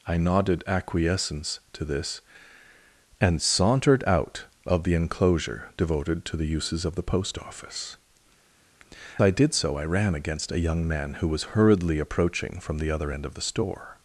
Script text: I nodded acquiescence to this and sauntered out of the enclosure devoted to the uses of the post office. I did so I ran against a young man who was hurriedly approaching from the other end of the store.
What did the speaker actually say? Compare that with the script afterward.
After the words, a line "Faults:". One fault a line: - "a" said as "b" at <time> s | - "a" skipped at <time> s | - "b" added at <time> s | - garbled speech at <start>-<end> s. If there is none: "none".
I nodded acquiescence to this and sauntered out of the enclosure devoted to the uses of the post office. I did so I ran against a young man who was hurriedly approaching from the other end of the store.
Faults:
none